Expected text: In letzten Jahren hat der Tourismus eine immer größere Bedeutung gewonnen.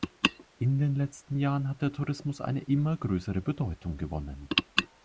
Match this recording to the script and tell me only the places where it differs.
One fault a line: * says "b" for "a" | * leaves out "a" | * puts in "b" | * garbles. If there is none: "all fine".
* puts in "den"